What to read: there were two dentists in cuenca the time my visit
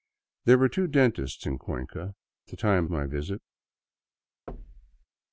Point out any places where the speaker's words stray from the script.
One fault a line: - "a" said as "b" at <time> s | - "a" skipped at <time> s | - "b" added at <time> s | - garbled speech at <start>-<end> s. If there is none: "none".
none